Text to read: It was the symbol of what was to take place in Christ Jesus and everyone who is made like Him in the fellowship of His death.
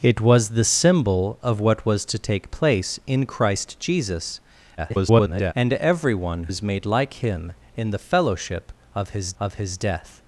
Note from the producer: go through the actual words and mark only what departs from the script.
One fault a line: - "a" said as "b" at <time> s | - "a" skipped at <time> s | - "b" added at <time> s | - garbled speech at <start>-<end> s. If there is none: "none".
- garbled speech at 4.8-5.5 s
- "who" skipped at 6.5 s
- "of His" added at 9.4 s